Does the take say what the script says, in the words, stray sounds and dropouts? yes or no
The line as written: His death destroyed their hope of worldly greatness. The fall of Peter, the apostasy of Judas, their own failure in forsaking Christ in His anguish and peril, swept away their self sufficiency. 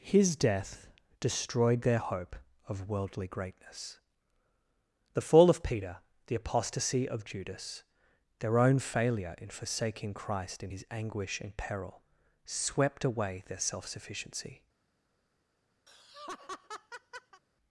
no